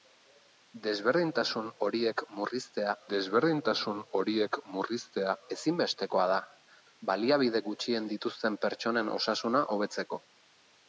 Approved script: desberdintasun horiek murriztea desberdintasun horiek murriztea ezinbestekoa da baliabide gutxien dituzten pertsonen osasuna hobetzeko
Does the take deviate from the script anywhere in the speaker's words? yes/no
no